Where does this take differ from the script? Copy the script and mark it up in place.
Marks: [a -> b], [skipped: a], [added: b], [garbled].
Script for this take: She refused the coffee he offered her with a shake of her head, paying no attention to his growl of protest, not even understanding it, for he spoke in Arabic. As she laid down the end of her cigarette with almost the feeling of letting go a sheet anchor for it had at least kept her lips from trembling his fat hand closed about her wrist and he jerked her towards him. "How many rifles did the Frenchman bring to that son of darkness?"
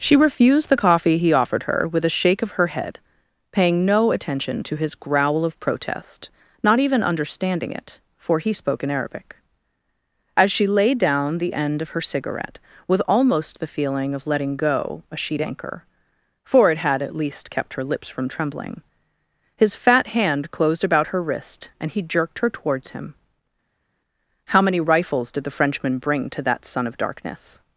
She refused the coffee he offered her with a shake of her head, paying no attention to his growl of protest, not even understanding it, for he spoke in Arabic. As she laid down the end of her cigarette with almost the feeling of letting go a sheet anchor for it had at least kept her lips from trembling his fat hand closed about her wrist and he jerked her towards him. "How many rifles did the Frenchman bring to that son of darkness?"